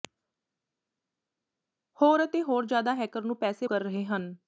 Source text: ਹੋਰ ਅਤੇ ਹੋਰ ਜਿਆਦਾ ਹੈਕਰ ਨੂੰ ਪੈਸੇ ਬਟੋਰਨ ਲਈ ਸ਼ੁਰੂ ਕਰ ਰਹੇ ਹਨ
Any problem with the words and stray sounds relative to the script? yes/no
yes